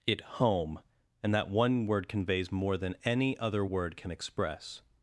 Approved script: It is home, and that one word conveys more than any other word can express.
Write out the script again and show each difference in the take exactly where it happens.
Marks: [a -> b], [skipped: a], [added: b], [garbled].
It [skipped: is] home, and that one word conveys more than any other word can express.